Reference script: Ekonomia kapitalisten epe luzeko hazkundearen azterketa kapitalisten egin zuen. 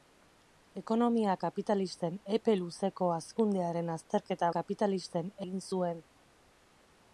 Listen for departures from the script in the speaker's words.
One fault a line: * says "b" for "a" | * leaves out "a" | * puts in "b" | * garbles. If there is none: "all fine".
all fine